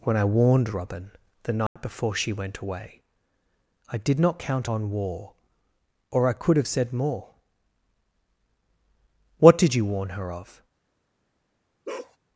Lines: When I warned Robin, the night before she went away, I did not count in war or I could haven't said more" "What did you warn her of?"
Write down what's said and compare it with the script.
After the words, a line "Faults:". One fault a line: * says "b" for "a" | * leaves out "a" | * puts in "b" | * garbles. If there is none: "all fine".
When I warned Robin, the night before she went away, I did not count on war or I could have said more" "What did you warn her of?"
Faults:
* says "on" for "in"
* says "have" for "haven't"